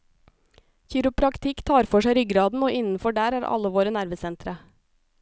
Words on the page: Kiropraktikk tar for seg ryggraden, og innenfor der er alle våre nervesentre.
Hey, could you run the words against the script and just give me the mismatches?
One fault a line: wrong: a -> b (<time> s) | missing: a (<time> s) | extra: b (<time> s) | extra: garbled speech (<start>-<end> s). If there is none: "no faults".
no faults